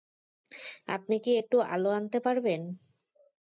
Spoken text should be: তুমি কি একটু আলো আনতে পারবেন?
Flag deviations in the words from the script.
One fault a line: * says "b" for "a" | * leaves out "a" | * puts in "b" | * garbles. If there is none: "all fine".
* says "আপনি" for "তুমি"